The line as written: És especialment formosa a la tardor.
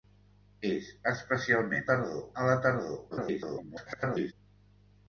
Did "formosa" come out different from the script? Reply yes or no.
yes